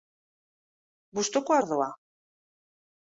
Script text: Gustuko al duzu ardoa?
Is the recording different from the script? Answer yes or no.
yes